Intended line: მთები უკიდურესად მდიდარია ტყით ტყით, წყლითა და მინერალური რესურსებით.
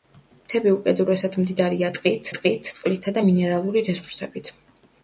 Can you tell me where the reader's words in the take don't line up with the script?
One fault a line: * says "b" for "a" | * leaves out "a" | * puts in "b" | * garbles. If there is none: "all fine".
all fine